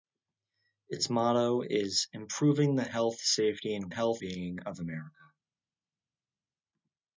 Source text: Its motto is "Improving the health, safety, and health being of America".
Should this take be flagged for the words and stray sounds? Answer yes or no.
no